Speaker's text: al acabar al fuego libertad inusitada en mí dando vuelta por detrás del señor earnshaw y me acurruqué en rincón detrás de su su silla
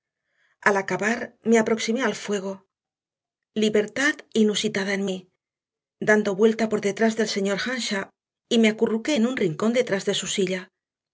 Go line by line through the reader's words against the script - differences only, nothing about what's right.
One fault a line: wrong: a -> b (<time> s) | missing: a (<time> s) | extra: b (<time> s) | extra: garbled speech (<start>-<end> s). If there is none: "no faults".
extra: me aproximé (1.4 s)
extra: un (9.3 s)
missing: su (10.3 s)